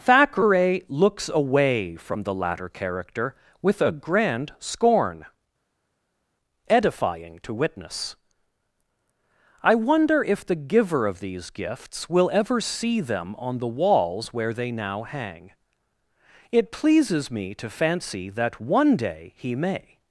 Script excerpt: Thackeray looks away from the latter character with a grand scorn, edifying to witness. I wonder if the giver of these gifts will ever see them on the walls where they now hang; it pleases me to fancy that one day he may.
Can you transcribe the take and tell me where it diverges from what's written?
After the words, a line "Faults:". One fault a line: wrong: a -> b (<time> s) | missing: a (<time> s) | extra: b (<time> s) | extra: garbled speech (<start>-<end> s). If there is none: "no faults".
Thackeray looks away from the latter character with a grand scorn, edifying to witness. I wonder if the giver of these gifts will ever see them on the walls where they now hang; it pleases me to fancy that one day he may.
Faults:
no faults